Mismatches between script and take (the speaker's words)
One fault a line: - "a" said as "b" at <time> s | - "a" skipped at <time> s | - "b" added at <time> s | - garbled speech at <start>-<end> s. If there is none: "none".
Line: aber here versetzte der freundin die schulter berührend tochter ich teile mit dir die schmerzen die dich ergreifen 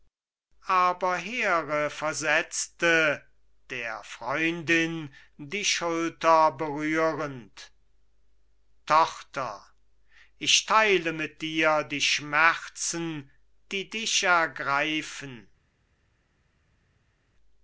none